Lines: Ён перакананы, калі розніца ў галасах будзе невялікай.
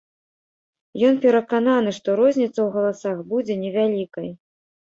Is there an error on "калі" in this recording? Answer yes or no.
yes